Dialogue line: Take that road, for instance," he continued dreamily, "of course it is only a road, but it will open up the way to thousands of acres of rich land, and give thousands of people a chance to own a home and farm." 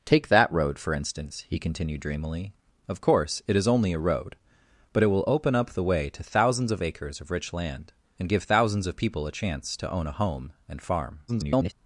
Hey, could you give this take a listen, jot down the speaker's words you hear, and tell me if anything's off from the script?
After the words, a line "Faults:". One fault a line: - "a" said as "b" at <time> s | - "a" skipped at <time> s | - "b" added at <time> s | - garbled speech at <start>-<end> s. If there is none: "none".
Take that road, for instance," he continued dreamily, "of course it is only a road, but it will open up the way to thousands of acres of rich land, and give thousands of people a chance to own a home and farm." [garbled]
Faults:
- garbled speech at 11.3-11.7 s